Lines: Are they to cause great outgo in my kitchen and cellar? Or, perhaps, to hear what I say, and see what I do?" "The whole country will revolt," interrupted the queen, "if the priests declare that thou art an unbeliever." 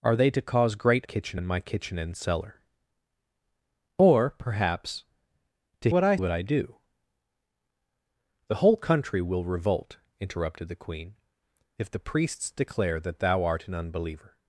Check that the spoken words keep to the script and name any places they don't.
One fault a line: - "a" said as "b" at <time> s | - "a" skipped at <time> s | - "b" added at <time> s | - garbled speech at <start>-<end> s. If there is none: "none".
- "outgo" said as "kitchen" at 1.0 s
- "hear" skipped at 5.9 s
- "say and see" skipped at 6.2 s